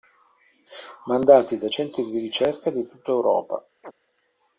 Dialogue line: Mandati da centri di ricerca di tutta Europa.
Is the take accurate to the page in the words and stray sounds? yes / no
no